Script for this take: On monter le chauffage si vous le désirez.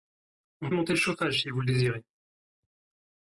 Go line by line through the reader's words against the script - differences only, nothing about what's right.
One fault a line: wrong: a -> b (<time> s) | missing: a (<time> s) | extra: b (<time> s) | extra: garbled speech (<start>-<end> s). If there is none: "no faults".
no faults